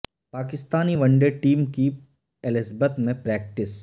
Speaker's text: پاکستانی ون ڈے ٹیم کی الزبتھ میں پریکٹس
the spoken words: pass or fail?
pass